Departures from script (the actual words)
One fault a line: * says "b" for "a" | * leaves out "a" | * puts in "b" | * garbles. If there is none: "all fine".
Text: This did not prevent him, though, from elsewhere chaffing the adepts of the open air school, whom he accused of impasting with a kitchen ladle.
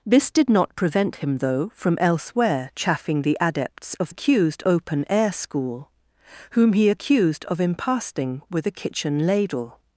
* says "accused" for "the"